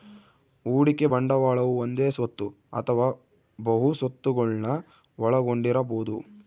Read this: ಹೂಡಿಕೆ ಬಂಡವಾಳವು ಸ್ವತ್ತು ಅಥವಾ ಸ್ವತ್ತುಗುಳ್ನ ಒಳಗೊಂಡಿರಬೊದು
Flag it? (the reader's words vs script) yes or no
yes